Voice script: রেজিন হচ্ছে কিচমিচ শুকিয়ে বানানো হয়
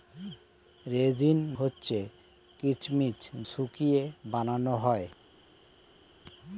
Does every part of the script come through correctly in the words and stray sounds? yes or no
yes